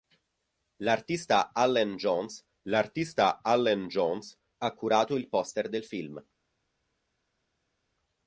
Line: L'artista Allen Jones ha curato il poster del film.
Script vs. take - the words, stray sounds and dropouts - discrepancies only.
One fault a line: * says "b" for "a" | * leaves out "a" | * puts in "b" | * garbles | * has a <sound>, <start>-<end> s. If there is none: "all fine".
* puts in "l'artista Allen Jones"